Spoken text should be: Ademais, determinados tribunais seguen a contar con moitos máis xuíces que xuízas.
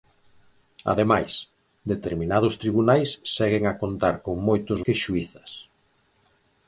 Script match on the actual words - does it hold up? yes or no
no